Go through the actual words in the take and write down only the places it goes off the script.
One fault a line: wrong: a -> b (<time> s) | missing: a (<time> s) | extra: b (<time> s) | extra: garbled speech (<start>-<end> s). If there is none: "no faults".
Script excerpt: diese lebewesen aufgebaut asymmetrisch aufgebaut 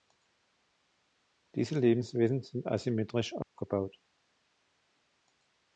wrong: aufgebaut -> sind (2.4 s)